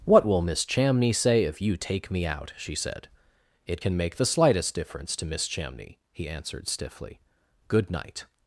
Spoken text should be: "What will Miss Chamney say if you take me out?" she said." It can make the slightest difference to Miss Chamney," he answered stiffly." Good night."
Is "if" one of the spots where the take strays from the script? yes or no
no